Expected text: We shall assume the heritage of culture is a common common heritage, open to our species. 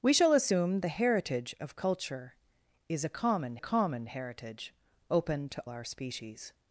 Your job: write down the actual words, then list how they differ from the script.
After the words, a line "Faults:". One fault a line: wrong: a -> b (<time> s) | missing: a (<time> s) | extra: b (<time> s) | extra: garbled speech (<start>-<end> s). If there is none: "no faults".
We shall assume the heritage of culture is a common common heritage, open to our species.
Faults:
no faults